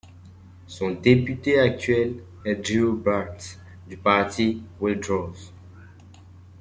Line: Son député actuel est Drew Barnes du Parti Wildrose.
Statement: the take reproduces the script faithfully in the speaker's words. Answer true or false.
true